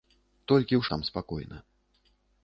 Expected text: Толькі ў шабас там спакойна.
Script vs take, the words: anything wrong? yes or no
yes